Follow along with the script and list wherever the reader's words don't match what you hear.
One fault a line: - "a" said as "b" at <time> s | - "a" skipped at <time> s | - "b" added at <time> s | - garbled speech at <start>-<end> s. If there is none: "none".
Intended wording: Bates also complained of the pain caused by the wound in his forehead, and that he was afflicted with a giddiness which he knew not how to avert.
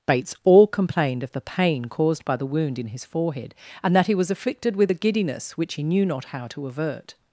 - "also" said as "all" at 0.4 s